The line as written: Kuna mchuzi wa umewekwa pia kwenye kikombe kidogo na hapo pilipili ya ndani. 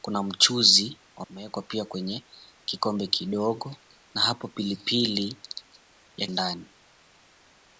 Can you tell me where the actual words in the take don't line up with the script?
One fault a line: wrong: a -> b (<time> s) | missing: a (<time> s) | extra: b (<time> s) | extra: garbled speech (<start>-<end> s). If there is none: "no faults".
no faults